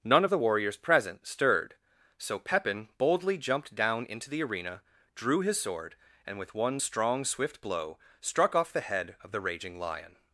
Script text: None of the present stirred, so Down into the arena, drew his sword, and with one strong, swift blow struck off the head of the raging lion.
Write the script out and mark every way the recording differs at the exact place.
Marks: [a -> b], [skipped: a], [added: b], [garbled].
None of the [added: warriors] present stirred, so [added: Pepin boldly jumped] Down into the arena, drew his sword, and with one strong, swift blow struck off the head of the raging lion.